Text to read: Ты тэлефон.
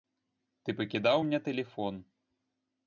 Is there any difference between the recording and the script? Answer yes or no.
yes